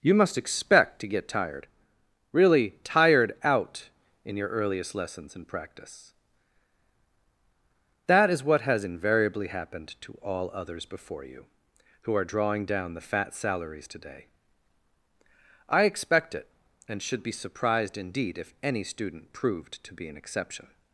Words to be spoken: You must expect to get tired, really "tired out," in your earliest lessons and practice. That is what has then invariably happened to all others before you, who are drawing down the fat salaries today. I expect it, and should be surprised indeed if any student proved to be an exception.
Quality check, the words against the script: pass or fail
fail